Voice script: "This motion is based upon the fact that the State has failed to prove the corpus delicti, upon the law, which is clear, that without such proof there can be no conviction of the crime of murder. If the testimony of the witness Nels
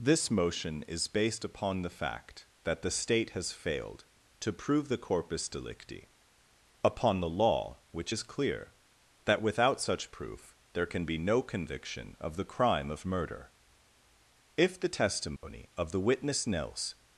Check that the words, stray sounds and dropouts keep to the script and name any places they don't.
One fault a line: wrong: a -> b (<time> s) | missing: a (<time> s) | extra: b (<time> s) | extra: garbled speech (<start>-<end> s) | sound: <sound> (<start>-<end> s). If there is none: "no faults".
sound: dropout (15.4-15.4 s)